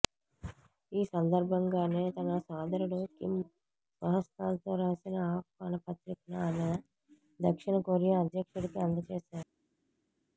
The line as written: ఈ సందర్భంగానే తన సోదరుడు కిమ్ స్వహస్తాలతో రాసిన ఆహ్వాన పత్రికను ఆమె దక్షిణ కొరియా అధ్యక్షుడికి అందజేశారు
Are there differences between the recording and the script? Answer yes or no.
no